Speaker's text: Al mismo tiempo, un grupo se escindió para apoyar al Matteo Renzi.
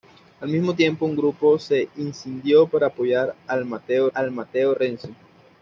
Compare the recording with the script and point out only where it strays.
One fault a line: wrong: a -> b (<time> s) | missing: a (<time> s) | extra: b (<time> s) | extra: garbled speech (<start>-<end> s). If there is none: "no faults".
extra: al Matteo (4.1 s)